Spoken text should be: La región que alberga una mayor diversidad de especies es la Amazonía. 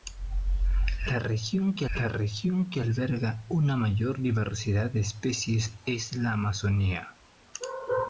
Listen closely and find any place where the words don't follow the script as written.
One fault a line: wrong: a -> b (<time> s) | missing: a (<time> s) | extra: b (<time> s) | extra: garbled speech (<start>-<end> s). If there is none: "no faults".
extra: la región que (1.9 s)